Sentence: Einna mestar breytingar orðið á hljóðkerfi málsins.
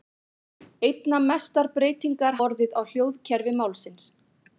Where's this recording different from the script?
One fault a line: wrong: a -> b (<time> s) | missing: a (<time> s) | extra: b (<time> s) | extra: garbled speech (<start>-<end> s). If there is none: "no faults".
no faults